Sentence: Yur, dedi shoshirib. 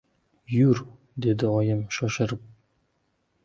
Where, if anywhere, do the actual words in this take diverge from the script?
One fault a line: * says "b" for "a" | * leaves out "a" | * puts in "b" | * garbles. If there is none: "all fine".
* puts in "oyim"